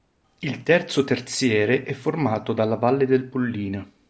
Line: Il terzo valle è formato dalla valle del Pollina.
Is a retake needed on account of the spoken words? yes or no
yes